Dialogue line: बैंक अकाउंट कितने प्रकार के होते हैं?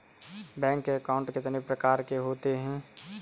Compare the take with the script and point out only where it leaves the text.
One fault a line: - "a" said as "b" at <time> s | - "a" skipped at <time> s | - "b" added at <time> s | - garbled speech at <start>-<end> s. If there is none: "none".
none